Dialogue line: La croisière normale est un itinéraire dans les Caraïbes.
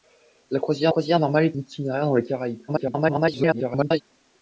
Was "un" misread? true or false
true